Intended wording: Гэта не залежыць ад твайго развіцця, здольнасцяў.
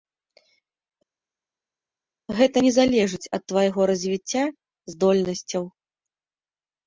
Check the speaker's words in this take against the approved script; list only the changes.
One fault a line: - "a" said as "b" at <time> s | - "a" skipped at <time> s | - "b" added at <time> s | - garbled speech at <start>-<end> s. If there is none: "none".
none